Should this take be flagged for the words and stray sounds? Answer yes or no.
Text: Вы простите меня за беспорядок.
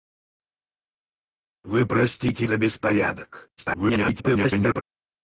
yes